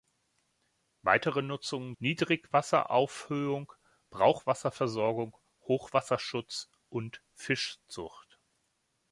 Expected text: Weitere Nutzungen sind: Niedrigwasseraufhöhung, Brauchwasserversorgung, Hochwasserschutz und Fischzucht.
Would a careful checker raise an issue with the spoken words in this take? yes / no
yes